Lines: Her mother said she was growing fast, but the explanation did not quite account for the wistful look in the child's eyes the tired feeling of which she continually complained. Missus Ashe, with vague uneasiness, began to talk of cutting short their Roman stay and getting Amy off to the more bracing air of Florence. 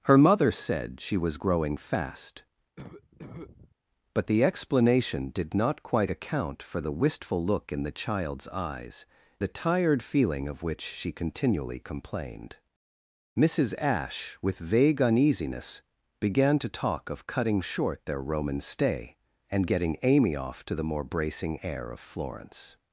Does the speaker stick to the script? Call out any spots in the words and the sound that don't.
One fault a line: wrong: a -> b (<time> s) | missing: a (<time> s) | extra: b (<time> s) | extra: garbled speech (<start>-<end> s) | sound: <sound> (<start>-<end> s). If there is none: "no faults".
sound: cough (2.8-3.7 s)